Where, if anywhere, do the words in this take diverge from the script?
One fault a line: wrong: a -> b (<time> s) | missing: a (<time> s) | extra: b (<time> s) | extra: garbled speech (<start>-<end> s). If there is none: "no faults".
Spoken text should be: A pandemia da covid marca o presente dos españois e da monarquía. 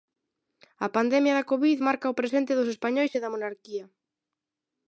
no faults